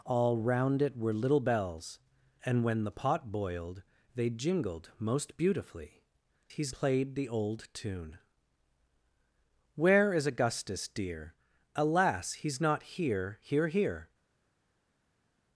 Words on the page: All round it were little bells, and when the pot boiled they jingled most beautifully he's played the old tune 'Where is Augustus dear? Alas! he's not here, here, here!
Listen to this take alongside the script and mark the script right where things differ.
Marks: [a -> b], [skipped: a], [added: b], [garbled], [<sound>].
All round it were little bells, and when the pot boiled they jingled most beautifully he's played the old tune 'Where is Augustus dear? Alas! he's not here, here, here!